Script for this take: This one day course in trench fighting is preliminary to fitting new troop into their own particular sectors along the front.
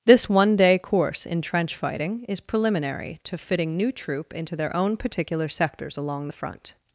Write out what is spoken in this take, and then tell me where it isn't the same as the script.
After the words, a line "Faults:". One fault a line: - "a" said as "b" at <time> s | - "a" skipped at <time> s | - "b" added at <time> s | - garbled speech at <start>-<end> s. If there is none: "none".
This one day course in trench fighting is preliminary to fitting new troop into their own particular sectors along the front.
Faults:
none